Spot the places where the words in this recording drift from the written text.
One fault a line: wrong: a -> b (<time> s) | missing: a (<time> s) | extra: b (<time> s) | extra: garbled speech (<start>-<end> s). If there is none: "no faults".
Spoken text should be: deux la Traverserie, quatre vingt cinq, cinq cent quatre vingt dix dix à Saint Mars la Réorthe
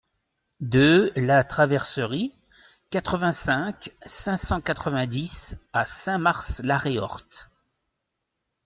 missing: dix (5.6 s)